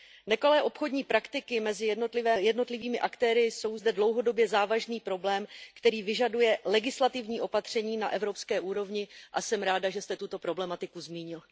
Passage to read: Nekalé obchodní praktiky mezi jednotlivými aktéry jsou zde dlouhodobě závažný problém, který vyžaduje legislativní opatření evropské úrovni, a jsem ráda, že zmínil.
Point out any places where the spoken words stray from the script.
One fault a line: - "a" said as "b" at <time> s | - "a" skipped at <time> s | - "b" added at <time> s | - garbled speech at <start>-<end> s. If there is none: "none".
- "na" added at 8.0 s
- "jste tuto problematiku" added at 10.0 s